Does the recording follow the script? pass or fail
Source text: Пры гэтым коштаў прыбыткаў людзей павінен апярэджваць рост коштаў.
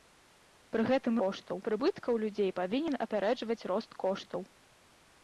pass